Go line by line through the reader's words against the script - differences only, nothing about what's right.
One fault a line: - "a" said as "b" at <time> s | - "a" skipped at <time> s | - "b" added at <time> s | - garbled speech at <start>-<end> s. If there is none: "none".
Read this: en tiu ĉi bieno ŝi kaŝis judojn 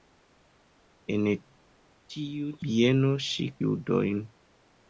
- "ĉi" skipped at 2.5 s
- "kaŝis" skipped at 3.5 s